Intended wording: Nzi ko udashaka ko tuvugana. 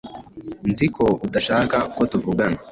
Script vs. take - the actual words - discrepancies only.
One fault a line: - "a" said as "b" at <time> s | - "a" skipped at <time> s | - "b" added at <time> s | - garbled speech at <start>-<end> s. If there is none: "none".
none